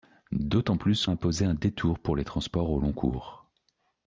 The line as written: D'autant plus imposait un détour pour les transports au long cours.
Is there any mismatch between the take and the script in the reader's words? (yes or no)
no